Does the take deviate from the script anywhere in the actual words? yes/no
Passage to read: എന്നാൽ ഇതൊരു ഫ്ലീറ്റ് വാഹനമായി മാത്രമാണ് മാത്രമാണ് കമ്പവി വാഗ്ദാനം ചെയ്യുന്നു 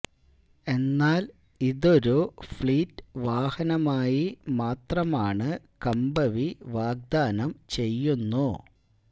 yes